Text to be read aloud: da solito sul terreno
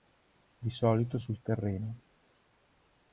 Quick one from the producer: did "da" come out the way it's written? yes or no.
no